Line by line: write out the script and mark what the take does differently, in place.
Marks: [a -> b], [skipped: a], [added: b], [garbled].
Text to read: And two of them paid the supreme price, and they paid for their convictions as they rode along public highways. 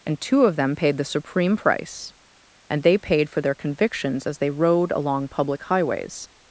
And two of them paid the supreme price, and they paid for their convictions as they rode along public highways.